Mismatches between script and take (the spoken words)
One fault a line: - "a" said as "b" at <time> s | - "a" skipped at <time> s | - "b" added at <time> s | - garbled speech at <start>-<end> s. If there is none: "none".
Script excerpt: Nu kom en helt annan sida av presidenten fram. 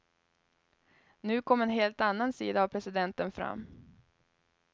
none